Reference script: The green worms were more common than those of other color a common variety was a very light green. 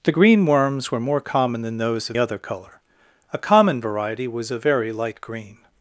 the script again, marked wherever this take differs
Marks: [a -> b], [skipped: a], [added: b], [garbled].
The green worms were more common than those of other color a common variety was a very light green.